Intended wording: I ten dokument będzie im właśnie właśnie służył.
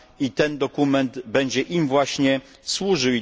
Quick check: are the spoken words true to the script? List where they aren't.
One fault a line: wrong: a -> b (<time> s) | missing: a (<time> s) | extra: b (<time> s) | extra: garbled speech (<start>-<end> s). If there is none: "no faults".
missing: właśnie (2.4 s)